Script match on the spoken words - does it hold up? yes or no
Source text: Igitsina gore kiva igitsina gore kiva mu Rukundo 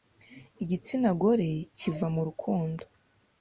no